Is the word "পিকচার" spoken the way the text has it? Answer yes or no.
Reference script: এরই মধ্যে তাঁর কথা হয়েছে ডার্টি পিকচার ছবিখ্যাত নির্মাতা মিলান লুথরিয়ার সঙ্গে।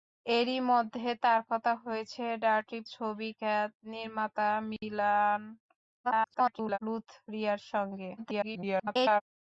no